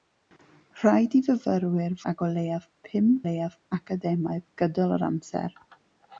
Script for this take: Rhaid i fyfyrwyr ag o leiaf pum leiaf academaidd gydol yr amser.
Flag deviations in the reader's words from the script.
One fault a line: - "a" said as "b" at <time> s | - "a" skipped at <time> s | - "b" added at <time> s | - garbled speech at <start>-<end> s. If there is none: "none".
none